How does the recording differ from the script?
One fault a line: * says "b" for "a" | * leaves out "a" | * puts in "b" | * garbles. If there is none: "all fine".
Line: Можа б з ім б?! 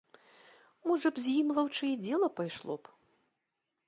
* puts in "лаўчэй дзела пайшло"